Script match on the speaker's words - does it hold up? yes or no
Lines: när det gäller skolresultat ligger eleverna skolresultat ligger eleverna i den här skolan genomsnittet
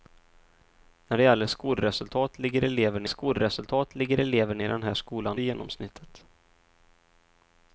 yes